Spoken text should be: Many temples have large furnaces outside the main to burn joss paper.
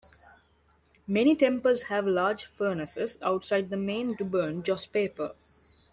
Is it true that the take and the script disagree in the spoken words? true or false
false